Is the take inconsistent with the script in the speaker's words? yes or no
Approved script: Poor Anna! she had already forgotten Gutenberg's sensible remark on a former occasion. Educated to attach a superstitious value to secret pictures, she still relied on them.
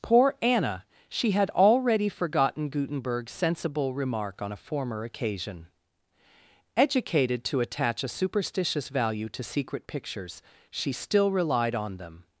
no